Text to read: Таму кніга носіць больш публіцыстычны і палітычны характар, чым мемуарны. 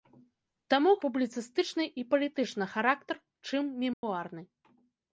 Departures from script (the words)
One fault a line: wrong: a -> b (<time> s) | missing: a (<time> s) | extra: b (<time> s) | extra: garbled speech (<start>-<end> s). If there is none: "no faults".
missing: кніга носіць больш (0.9 s)